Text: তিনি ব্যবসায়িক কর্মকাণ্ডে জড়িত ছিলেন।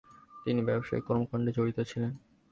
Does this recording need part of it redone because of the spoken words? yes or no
no